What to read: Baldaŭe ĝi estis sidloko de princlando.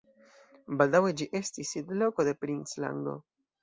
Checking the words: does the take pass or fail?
pass